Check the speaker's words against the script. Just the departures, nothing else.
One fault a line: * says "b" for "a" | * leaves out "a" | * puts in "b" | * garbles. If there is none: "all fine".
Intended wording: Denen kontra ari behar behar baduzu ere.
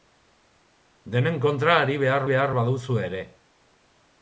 all fine